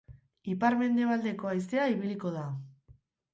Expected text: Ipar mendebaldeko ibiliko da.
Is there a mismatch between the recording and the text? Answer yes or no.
yes